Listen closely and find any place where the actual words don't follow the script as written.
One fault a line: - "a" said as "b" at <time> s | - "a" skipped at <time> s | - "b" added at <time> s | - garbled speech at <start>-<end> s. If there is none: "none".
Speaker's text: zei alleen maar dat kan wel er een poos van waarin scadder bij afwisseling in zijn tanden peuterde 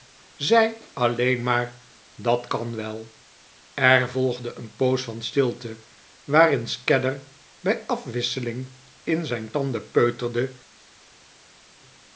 - "volgde" added at 4.1 s
- "stilte" added at 5.2 s